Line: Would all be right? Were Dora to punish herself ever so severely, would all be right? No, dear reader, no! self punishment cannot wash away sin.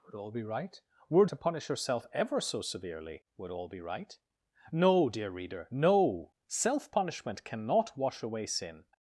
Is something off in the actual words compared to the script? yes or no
yes